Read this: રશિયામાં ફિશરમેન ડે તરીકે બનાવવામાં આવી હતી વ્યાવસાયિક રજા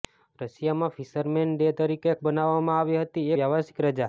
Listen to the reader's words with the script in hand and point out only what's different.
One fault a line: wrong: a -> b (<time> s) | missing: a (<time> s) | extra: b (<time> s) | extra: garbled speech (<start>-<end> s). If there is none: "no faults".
no faults